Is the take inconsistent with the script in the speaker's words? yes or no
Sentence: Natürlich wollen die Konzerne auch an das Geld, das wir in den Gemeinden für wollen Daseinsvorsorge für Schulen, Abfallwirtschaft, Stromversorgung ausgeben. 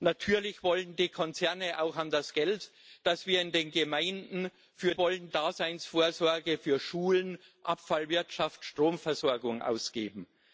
no